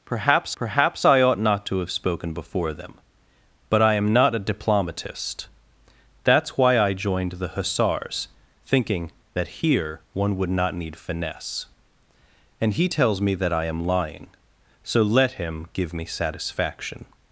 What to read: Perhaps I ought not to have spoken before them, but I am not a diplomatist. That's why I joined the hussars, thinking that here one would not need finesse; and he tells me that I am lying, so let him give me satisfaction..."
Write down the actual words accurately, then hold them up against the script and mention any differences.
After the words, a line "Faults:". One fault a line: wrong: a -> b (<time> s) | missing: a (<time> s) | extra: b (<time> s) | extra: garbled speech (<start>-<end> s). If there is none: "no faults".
Perhaps perhaps I ought not to have spoken before them, but I am not a diplomatist. That's why I joined the hussars, thinking that here one would not need finesse; and he tells me that I am lying, so let him give me satisfaction..."
Faults:
extra: perhaps (0.5 s)